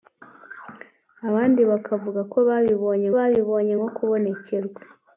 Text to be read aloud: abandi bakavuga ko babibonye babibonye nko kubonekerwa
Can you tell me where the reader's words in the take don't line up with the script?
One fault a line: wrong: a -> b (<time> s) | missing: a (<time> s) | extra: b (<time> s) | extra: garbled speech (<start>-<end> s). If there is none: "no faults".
no faults